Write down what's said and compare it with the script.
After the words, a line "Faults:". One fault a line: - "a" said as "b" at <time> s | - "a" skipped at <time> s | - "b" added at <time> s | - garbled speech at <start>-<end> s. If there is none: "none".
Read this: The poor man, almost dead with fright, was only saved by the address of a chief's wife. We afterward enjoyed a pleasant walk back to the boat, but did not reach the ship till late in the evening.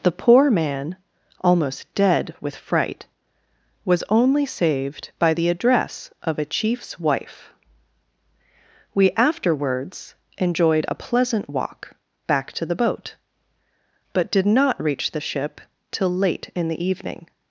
The poor man, almost dead with fright, was only saved by the address of a chief's wife. We afterwards enjoyed a pleasant walk back to the boat, but did not reach the ship till late in the evening.
Faults:
- "afterward" said as "afterwards" at 9.1 s